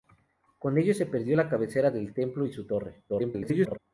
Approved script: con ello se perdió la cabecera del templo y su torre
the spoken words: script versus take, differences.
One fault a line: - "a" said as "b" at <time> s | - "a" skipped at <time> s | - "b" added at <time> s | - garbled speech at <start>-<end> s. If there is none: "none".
- garbled speech at 3.1-3.8 s